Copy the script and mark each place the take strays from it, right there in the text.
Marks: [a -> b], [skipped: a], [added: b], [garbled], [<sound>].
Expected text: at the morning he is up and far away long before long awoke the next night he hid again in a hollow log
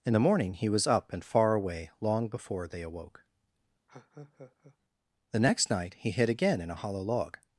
[at -> in] the morning he [is -> was] up and far away long before [long -> they] awoke [laugh] the next night he hid again in a hollow log